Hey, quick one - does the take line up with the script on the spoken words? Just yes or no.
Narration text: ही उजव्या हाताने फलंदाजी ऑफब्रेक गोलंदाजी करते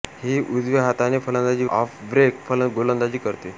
yes